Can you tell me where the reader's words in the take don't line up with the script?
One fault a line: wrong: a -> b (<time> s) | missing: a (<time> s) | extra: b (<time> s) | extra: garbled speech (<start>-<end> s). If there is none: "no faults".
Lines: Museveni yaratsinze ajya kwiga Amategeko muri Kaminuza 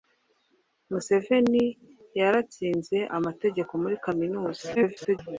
missing: ajya kwiga (3.0 s)
extra: garbled speech (4.7-5.2 s)